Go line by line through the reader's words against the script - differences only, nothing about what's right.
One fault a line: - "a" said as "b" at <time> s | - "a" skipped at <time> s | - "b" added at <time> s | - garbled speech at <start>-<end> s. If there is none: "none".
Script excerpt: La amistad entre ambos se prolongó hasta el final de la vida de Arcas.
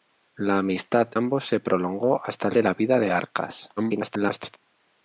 - "entre" skipped at 1.1 s
- "final" skipped at 2.5 s
- garbled speech at 3.8-4.6 s